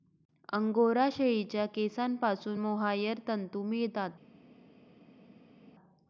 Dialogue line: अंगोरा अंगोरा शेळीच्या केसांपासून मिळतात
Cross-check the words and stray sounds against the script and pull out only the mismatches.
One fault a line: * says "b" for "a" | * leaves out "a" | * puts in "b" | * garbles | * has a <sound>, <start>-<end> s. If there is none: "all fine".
* leaves out "अंगोरा"
* puts in "मोहायर तंतू"